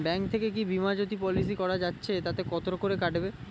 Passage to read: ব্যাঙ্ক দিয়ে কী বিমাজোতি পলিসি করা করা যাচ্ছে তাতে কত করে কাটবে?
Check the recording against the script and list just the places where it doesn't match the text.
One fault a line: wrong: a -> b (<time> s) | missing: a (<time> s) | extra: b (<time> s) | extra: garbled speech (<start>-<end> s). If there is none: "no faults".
wrong: দিয়ে -> থেকে (0.3 s)
missing: করা (1.8 s)